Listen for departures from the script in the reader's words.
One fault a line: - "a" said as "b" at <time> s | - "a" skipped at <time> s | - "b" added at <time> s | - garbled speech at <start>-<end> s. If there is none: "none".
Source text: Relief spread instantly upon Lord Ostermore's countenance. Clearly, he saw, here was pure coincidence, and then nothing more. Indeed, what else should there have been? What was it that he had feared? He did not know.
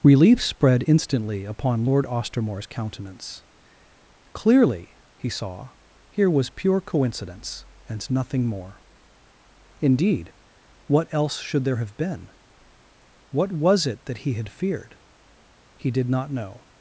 - "then" skipped at 8.1 s